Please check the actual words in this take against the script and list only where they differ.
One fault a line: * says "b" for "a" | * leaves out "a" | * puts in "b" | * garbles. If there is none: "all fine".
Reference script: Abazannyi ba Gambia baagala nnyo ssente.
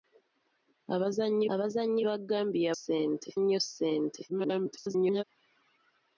* puts in "abazannyi"
* says "ssente" for "baagala"
* garbles